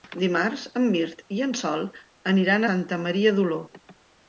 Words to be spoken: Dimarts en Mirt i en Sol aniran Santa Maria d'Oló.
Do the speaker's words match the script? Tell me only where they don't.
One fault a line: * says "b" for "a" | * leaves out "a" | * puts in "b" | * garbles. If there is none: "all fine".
all fine